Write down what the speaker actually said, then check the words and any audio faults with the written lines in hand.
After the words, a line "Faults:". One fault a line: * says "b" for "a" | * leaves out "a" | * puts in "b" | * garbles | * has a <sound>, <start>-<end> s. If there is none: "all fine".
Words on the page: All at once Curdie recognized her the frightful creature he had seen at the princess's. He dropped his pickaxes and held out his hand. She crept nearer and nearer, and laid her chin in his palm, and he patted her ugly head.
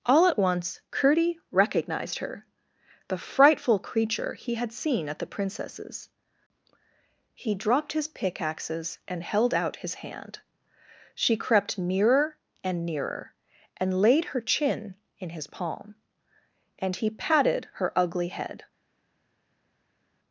All at once Curdie recognized her the frightful creature he had seen at the princess's. He dropped his pickaxes and held out his hand. She crept nearer and nearer, and laid her chin in his palm, and he patted her ugly head.
Faults:
all fine